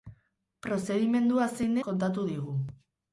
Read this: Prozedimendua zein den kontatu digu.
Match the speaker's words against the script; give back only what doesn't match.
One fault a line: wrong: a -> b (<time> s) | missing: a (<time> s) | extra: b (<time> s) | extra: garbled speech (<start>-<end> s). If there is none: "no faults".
missing: den (1.8 s)